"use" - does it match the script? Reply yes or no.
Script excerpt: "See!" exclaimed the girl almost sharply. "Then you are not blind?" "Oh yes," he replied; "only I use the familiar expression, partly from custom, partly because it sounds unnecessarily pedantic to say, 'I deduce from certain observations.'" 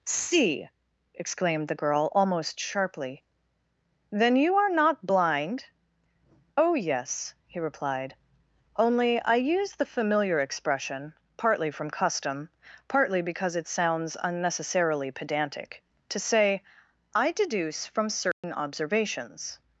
yes